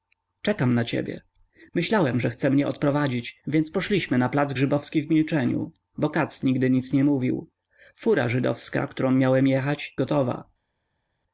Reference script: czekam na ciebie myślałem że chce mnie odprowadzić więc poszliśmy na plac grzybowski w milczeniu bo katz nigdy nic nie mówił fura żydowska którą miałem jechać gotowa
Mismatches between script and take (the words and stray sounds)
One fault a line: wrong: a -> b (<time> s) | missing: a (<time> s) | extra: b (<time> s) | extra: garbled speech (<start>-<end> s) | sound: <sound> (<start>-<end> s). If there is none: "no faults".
no faults